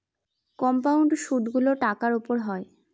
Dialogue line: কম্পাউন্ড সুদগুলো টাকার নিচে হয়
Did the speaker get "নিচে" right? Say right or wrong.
wrong